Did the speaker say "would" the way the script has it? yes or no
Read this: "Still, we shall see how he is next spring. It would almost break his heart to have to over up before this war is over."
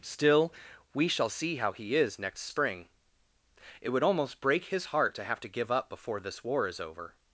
yes